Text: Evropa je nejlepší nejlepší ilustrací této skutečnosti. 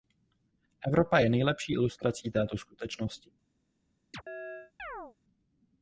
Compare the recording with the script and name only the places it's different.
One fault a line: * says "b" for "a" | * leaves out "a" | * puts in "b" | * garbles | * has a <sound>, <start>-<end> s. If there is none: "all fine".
* leaves out "nejlepší"
* has a chirp, 4.1-5.2 s